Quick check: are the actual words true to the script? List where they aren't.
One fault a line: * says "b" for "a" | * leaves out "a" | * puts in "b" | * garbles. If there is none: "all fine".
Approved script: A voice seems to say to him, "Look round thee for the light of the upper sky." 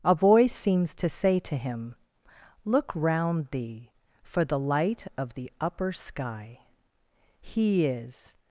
* puts in "He is"